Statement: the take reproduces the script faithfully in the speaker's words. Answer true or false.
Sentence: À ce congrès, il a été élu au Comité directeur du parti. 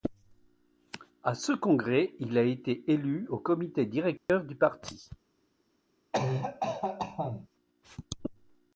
true